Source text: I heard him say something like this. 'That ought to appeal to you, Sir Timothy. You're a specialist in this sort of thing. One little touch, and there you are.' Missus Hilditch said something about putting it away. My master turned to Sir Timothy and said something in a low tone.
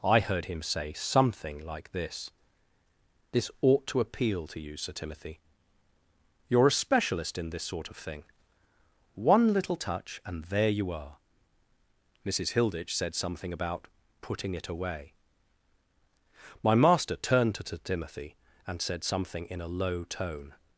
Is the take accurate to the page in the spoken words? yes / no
no